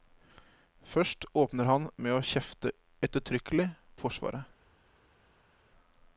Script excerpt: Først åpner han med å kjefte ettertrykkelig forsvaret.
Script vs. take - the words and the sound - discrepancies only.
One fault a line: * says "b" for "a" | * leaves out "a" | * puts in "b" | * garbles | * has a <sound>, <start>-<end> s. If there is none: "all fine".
all fine